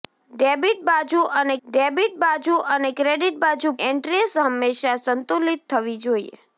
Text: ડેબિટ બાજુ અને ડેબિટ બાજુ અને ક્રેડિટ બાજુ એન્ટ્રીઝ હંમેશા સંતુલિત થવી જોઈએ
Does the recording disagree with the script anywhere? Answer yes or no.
no